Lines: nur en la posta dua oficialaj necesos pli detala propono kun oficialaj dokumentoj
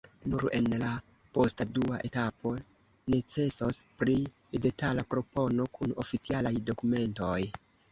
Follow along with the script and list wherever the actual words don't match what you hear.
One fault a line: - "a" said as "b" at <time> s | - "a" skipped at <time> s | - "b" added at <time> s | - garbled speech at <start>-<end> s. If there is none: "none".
- "oficialaj" said as "etapo" at 2.1 s